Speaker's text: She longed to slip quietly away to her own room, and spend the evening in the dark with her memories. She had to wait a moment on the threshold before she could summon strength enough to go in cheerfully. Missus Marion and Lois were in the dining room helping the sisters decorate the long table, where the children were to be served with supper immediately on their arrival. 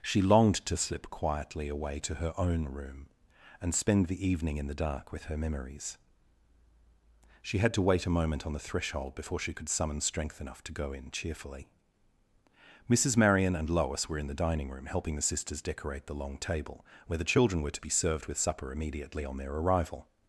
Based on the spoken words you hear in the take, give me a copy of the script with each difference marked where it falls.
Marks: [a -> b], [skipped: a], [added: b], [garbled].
She longed to slip quietly away to her own room, and spend the evening in the dark with her memories. She had to wait a moment on the threshold before she could summon strength enough to go in cheerfully. Missus Marion and Lois were in the dining room helping the sisters decorate the long table, where the children were to be served with supper immediately on their arrival.